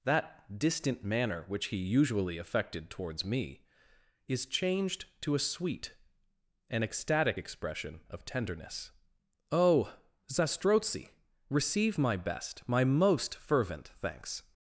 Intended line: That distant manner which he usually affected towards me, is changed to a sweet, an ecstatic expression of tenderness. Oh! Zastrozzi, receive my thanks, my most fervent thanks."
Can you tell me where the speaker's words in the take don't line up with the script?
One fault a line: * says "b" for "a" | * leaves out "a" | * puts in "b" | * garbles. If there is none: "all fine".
* says "best" for "thanks"